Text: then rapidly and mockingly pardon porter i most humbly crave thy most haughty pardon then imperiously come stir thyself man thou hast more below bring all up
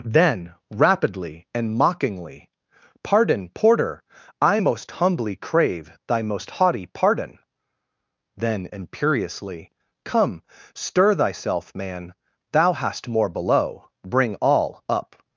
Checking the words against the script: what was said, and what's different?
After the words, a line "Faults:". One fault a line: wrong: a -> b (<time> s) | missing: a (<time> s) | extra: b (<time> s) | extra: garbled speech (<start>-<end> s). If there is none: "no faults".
then rapidly and mockingly pardon porter i most humbly crave thy most haughty pardon then imperiously come stir thyself man thou hast more below bring all up
Faults:
no faults